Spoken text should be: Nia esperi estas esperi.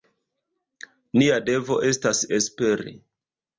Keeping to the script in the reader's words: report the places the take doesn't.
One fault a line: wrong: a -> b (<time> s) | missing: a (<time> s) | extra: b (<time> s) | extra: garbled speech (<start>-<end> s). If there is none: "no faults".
wrong: esperi -> devo (1.5 s)